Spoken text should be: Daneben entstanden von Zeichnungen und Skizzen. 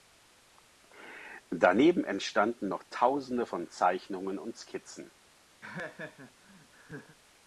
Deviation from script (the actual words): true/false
true